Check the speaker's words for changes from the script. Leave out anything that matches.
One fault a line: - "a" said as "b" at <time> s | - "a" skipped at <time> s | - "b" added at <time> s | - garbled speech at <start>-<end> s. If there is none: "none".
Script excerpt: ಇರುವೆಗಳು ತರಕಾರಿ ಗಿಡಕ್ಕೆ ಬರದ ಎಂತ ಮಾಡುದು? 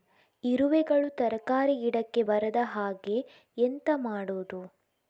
- "ಹಾಗೆ" added at 2.6 s